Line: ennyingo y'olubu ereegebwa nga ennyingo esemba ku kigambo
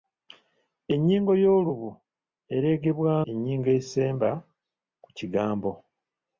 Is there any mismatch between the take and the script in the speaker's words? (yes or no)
yes